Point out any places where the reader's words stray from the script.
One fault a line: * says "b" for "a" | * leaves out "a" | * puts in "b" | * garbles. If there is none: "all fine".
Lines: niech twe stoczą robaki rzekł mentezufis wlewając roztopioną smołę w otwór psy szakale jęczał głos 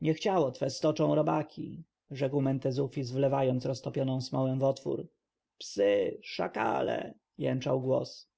* puts in "ciało"